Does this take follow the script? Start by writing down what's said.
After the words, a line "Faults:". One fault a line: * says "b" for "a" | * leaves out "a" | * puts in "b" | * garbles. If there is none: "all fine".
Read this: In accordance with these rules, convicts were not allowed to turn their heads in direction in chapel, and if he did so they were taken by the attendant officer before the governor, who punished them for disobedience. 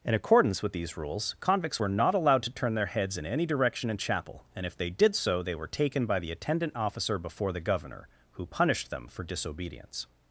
In accordance with these rules, convicts were not allowed to turn their heads in any direction in chapel, and if they did so they were taken by the attendant officer before the governor, who punished them for disobedience.
Faults:
* puts in "any"
* says "they" for "he"